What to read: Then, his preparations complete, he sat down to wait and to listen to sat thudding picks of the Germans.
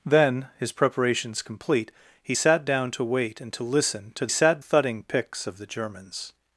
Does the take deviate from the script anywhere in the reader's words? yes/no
no